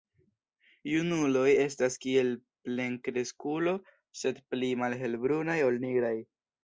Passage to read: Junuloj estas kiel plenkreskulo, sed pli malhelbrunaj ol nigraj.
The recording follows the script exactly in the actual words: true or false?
true